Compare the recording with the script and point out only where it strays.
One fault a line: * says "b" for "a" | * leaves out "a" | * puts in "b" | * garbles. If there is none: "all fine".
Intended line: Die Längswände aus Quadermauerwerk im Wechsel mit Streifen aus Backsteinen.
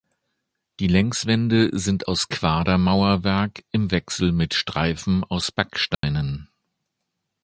* puts in "sind"